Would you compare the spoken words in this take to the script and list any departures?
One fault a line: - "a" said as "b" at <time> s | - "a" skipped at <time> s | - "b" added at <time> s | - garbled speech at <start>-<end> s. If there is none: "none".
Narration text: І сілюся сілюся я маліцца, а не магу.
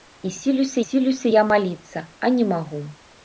none